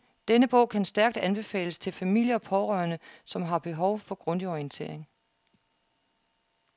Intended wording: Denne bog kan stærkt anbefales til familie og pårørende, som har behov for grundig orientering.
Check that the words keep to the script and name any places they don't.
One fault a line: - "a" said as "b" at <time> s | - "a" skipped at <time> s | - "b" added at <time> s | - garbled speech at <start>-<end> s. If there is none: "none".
none